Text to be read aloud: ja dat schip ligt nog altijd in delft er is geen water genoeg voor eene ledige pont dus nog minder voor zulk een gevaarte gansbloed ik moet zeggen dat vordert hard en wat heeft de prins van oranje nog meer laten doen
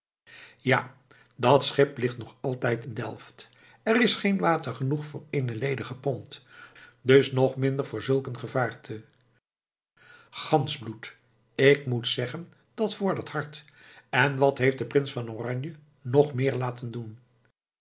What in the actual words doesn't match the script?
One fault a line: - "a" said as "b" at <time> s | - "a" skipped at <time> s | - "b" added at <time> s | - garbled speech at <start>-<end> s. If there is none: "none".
none